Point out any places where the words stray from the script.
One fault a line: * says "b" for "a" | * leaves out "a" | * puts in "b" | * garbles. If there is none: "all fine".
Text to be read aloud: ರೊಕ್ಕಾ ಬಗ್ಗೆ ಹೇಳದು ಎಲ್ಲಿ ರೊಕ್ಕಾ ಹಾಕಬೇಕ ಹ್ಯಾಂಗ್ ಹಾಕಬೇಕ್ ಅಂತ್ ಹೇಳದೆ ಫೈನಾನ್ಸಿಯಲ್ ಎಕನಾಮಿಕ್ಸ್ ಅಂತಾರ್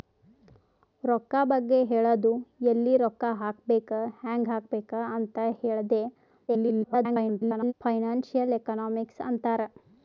* garbles